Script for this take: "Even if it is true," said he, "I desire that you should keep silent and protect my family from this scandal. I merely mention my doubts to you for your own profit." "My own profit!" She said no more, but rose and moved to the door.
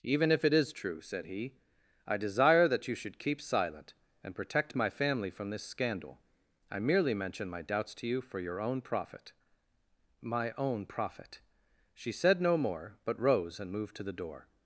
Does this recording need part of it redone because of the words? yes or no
no